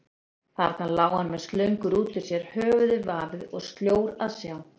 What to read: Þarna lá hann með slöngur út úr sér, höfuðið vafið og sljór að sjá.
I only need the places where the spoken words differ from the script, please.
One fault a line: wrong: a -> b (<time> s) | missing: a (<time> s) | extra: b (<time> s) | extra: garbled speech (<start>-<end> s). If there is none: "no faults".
no faults